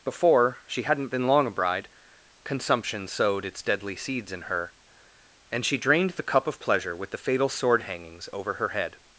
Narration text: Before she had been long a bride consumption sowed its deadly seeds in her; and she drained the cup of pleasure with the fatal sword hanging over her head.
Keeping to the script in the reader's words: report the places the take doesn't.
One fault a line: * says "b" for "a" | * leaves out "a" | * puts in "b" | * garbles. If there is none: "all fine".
* says "hadn't" for "had"
* says "hangings" for "hanging"